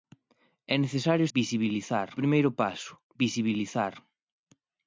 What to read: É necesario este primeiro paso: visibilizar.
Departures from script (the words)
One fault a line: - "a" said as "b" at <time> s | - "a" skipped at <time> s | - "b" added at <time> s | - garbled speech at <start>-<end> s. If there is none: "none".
- "este" said as "visibilizar" at 1.4 s